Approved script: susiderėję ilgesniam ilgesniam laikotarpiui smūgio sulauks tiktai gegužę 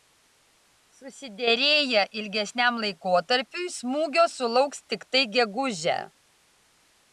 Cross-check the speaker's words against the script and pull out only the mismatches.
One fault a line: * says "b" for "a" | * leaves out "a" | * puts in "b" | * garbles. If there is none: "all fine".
* leaves out "ilgesniam"